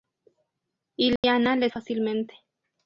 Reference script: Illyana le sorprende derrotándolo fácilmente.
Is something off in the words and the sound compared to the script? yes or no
yes